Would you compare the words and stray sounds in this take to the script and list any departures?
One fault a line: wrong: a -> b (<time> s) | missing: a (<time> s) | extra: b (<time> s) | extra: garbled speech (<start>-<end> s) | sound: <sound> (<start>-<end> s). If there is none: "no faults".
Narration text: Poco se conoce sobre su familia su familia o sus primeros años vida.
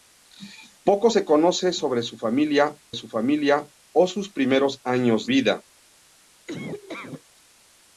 sound: laugh (6.5-7.2 s)